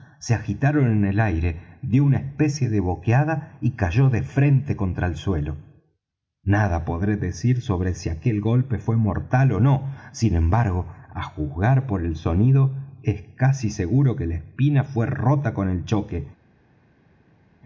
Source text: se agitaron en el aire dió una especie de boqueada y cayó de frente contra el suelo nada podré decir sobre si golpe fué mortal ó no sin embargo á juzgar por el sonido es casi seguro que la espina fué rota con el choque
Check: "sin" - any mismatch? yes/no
no